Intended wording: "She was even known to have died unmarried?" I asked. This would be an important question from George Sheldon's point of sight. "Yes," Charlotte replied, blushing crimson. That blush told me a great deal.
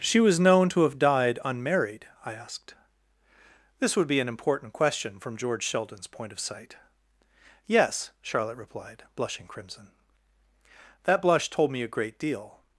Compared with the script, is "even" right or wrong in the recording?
wrong